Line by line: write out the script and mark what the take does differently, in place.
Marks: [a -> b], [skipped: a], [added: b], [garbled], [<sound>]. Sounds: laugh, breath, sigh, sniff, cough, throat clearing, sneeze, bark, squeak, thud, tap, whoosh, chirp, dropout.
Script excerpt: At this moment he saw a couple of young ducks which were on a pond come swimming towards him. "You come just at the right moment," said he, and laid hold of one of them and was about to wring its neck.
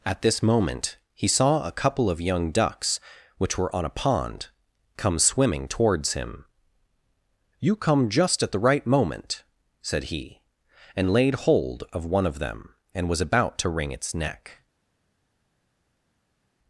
At this moment he saw a couple of young ducks which were on a pond come swimming towards him. "You come just at the right moment," said he, and laid hold of one of them and was about to wring its neck.